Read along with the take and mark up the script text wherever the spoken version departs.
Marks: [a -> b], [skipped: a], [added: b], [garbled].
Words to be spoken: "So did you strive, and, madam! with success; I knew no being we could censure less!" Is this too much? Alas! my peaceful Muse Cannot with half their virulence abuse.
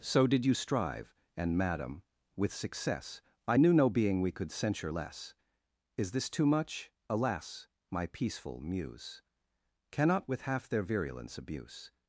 "So did you strive, and, madam! with success; I knew no being we could censure less!" Is this too much? Alas! my peaceful Muse Cannot with half their virulence abuse.